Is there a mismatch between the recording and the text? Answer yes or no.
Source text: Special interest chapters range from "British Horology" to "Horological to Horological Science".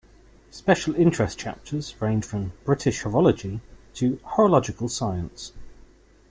yes